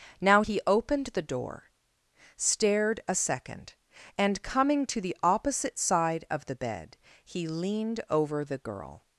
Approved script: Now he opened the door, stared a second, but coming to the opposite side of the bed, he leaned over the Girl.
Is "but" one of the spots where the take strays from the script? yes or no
yes